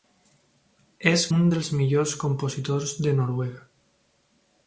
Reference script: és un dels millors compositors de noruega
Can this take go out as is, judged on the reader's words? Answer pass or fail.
pass